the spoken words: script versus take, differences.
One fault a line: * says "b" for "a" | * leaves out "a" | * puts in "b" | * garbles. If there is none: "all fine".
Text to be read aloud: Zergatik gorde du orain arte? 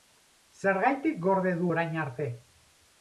all fine